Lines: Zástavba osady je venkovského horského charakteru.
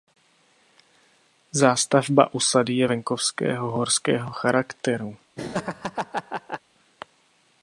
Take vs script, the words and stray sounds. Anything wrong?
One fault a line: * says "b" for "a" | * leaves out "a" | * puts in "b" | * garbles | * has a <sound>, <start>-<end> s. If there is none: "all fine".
* has a laugh, 5.4-6.6 s